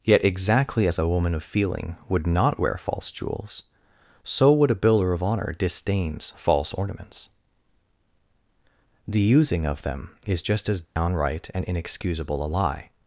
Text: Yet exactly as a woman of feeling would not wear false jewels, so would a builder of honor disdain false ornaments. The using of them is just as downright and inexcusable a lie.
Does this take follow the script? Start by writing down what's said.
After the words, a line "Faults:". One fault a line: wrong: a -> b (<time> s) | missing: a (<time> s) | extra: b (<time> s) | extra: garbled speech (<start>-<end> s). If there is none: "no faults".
Yet exactly as a woman of feeling would not wear false jewels, so would a builder of honor disdains false ornaments. The using of them is just as downright and inexcusable a lie.
Faults:
wrong: disdain -> disdains (5.6 s)